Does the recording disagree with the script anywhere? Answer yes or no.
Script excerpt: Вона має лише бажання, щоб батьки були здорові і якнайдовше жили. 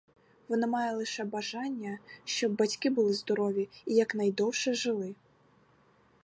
no